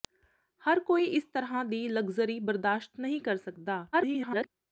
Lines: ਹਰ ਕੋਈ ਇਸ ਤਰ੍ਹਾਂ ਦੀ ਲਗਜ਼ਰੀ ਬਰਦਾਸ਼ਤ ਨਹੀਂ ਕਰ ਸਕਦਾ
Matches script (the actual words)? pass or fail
fail